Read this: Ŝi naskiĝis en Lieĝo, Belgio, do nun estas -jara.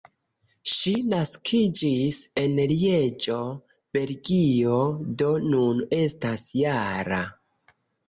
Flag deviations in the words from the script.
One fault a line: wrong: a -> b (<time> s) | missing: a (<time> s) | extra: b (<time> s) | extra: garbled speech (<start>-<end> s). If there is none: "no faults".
no faults